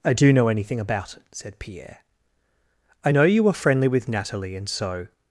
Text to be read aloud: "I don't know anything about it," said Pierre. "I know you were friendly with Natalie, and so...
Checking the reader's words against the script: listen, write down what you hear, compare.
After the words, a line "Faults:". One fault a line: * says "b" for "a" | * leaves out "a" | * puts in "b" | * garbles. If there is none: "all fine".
"I do know anything about it," said Pierre. "I know you were friendly with Natalie, and so...
Faults:
* says "do" for "don't"